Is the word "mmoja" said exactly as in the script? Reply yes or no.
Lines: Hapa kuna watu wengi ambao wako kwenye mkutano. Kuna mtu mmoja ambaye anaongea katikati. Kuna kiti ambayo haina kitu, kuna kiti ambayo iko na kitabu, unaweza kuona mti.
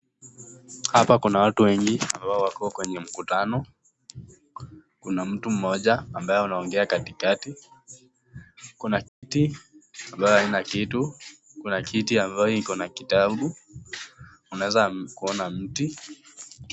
yes